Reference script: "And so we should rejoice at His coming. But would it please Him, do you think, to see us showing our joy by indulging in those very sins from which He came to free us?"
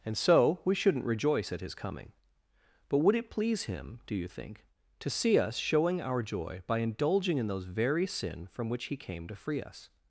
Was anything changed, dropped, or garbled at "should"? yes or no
yes